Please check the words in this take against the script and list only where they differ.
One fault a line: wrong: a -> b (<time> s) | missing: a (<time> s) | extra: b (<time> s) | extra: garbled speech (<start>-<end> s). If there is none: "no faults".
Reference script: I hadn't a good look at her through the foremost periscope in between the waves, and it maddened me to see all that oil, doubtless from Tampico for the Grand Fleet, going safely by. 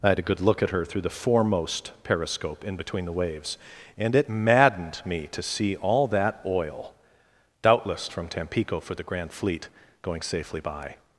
wrong: hadn't -> had (0.1 s)